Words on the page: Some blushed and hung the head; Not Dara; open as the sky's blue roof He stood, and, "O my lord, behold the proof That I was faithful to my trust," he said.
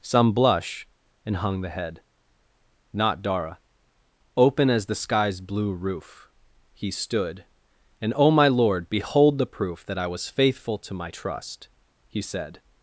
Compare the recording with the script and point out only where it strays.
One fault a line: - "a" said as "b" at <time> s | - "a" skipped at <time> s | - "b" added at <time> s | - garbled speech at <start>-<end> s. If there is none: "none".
- "blushed" said as "blush" at 0.3 s